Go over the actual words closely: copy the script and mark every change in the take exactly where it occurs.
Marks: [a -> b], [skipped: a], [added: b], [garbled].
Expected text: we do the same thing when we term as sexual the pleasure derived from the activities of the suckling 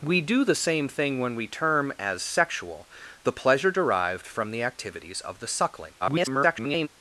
we do the same thing when we term as sexual the pleasure derived from the activities of the suckling [garbled]